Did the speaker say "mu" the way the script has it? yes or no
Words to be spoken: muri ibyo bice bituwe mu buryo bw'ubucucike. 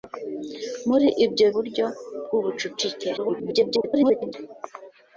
no